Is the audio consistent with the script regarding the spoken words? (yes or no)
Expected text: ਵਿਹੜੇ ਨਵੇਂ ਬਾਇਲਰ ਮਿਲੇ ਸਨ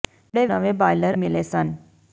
yes